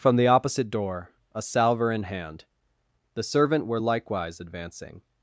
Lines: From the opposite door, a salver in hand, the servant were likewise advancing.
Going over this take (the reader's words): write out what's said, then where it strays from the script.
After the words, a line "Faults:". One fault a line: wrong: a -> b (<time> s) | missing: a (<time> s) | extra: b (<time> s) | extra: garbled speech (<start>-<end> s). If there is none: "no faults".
From the opposite door, a salver in hand, the servant were likewise advancing.
Faults:
no faults